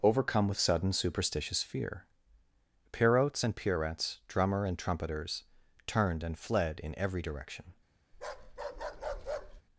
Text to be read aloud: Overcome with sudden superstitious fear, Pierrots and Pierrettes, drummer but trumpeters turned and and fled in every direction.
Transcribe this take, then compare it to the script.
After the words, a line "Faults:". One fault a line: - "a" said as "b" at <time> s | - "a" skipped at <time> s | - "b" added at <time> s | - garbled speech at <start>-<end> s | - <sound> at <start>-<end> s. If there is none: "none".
Overcome with sudden superstitious fear, Pierrots and Pierrettes, drummer and trumpeters turned and fled in every direction.
Faults:
- "but" said as "and" at 4.6 s
- "and" skipped at 6.4 s
- bark at 8.1-9.6 s